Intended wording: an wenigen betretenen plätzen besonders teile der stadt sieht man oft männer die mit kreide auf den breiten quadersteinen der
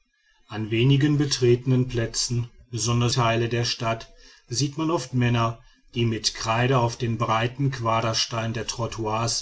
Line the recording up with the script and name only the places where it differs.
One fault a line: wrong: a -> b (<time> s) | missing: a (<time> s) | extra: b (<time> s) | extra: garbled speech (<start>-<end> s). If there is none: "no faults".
no faults